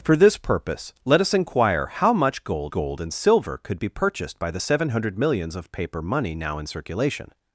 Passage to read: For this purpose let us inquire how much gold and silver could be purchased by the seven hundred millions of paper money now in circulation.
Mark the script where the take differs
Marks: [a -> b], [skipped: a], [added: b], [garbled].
For this purpose let us inquire how much gold [added: gold] and silver could be purchased by the seven hundred millions of paper money now in circulation.